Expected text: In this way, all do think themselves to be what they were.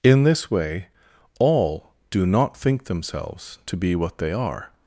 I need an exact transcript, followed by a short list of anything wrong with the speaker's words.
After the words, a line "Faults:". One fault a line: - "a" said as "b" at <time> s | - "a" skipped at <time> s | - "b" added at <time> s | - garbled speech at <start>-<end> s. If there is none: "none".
In this way, all do not think themselves to be what they are.
Faults:
- "not" added at 2.3 s
- "were" said as "are" at 4.3 s